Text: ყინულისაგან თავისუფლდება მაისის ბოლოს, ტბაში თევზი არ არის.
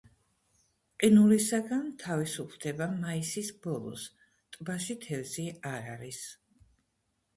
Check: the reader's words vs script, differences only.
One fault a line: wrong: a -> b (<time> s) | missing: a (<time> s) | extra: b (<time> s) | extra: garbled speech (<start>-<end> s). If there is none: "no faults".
no faults